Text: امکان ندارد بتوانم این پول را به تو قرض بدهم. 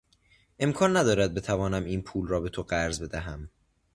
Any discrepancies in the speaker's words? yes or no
no